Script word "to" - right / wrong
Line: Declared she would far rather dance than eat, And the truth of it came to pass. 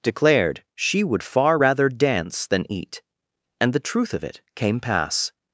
wrong